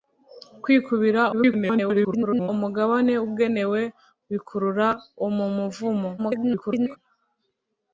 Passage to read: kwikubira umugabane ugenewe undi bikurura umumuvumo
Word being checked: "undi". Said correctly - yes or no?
no